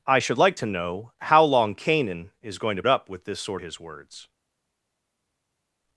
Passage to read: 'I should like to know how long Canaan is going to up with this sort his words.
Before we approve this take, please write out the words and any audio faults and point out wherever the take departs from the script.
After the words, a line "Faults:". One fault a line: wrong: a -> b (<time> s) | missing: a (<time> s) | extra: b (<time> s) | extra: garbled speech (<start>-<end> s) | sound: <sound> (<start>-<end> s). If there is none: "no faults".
'I should like to know how long Canaan is going to up with this sort his words.
Faults:
no faults